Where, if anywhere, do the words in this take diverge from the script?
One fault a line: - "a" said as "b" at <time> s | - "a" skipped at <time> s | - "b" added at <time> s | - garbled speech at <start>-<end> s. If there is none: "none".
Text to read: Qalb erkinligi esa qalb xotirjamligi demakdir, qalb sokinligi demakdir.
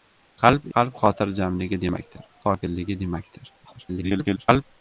- "erkinligi esa" skipped at 0.6 s
- "qalb" skipped at 2.3 s
- garbled speech at 3.6-4.6 s